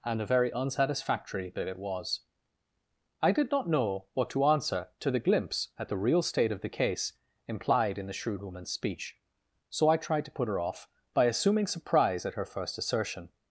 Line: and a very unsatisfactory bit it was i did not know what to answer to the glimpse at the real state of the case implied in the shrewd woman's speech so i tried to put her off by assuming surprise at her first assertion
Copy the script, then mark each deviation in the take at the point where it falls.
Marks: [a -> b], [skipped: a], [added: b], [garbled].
and a very unsatisfactory bit it was i did not know what to answer to the glimpse at the real state of the case implied in the shrewd woman's speech so i tried to put her off by assuming surprise at her first assertion